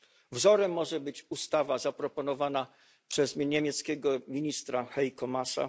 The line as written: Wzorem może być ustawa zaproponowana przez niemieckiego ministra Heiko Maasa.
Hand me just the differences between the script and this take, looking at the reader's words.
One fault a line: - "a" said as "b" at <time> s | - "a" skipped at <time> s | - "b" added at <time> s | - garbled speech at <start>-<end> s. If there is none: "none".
none